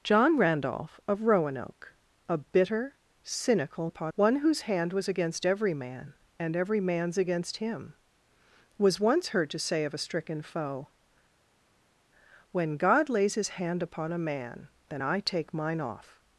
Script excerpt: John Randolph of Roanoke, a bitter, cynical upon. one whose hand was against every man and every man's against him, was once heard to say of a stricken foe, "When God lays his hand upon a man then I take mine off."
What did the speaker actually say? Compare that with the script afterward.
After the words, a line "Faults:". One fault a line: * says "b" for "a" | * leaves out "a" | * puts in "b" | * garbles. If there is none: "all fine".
John Randolph of Roanoke, a bitter, cynical upon. one whose hand was against every man and every man's against him, was once heard to say of a stricken foe, "When God lays his hand upon a man then I take mine off."
Faults:
all fine